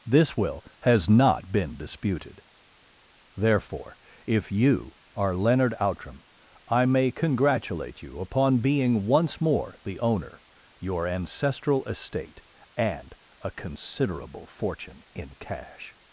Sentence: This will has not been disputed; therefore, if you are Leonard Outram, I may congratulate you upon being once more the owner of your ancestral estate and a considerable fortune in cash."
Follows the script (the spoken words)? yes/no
no